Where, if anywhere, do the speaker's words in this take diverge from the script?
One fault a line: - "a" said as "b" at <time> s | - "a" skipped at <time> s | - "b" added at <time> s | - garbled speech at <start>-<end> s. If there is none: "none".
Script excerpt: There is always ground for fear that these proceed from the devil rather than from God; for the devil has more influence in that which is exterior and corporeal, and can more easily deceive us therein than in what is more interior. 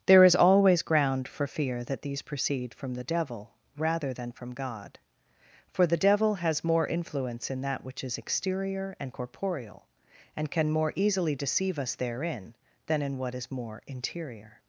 none